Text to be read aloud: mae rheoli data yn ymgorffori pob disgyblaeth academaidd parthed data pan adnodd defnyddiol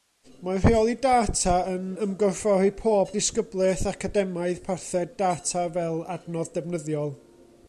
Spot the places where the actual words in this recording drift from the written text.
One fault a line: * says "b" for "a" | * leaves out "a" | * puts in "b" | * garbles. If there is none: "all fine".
* says "fel" for "pan"